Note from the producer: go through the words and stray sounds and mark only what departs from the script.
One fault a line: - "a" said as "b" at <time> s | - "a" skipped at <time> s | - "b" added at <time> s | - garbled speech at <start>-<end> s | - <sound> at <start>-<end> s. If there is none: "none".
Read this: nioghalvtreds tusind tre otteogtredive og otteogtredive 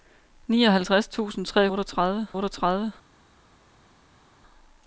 none